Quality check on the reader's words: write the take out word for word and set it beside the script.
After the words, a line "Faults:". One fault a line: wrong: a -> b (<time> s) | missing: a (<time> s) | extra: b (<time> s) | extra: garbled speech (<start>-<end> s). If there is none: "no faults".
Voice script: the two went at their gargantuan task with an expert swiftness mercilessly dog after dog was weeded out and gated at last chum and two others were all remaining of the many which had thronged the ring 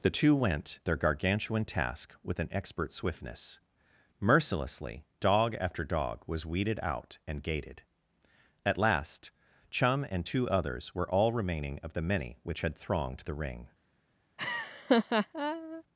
the two went their gargantuan task with an expert swiftness mercilessly dog after dog was weeded out and gated at last chum and two others were all remaining of the many which had thronged the ring
Faults:
missing: at (0.8 s)